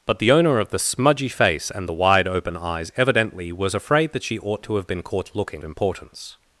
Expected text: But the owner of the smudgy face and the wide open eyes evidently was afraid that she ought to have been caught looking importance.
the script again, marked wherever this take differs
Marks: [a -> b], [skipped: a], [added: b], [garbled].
But the owner of the smudgy face and the wide open eyes evidently was afraid that she ought to have been caught looking importance.